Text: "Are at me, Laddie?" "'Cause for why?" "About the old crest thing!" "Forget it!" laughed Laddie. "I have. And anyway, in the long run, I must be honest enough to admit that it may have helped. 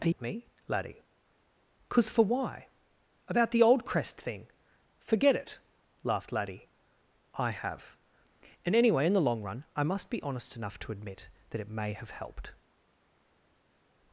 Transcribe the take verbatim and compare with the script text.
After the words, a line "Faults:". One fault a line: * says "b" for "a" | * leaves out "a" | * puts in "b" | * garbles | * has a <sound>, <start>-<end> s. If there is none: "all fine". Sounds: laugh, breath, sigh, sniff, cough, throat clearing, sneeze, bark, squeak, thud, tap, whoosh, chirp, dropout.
"Are at me, Laddie?" "'Cause for why?" "About the old crest thing!" "Forget it!" laughed Laddie. "I have. And anyway, in the long run, I must be honest enough to admit that it may have helped.
Faults:
all fine